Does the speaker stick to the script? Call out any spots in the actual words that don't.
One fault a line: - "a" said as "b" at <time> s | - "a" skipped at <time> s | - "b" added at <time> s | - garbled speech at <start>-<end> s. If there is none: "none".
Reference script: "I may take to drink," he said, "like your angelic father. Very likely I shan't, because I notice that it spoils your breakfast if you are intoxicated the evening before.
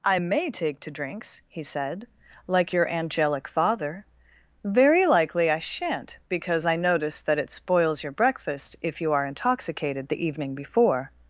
- "drink" said as "drinks" at 0.9 s